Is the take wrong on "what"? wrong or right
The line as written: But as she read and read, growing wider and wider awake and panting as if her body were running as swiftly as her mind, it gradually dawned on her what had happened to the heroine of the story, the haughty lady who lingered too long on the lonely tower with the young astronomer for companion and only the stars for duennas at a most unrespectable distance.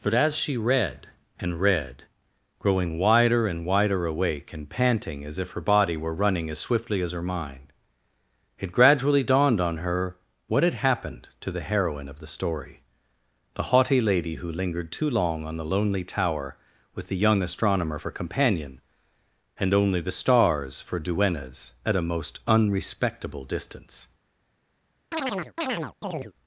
right